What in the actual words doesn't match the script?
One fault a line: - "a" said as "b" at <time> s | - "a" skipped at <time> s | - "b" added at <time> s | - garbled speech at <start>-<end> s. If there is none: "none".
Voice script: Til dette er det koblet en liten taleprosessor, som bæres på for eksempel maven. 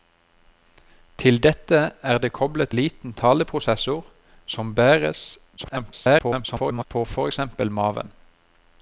- "en" skipped at 2.7 s
- garbled speech at 5.6-6.9 s